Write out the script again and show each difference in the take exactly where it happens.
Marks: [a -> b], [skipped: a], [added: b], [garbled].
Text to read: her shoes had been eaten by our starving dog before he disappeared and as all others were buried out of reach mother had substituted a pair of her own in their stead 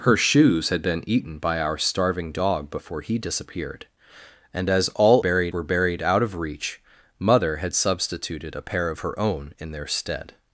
her shoes had been eaten by our starving dog before he disappeared and as all [others -> buried] were buried out of reach mother had substituted a pair of her own in their stead